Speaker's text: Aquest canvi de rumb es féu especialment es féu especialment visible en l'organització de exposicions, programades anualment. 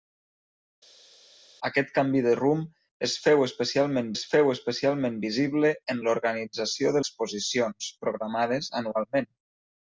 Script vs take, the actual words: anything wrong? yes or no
no